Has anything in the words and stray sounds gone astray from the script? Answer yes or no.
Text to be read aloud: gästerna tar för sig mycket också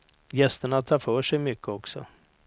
no